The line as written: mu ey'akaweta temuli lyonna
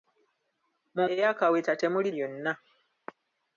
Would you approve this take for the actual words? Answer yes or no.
yes